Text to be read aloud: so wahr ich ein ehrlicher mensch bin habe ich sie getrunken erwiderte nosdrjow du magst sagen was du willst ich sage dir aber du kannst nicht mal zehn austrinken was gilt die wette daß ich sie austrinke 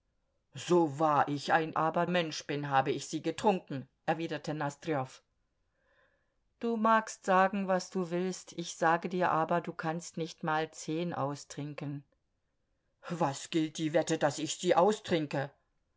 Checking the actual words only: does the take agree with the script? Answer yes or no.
no